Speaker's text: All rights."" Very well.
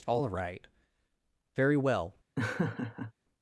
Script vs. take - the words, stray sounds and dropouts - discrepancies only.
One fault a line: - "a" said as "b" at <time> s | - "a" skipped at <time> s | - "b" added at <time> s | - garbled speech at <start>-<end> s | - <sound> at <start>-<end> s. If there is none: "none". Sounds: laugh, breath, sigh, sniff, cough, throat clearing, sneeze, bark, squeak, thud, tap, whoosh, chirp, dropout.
- "rights" said as "right" at 0.3 s
- laugh at 2.4-3.1 s